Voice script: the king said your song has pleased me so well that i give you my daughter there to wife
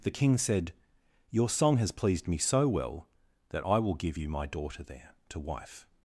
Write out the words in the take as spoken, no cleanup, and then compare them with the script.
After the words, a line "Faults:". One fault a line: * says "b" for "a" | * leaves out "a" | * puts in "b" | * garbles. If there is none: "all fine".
the king said your song has pleased me so well that i will give you my daughter there to wife
Faults:
* puts in "will"